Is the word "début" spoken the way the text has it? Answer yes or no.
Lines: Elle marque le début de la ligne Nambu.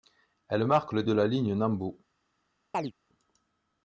no